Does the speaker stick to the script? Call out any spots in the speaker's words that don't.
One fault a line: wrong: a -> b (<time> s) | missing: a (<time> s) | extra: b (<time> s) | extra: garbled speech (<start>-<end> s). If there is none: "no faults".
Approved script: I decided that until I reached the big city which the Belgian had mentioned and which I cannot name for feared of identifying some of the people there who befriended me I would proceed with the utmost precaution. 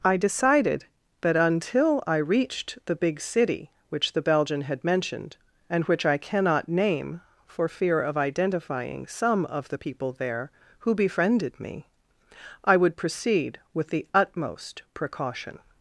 wrong: feared -> fear (7.7 s)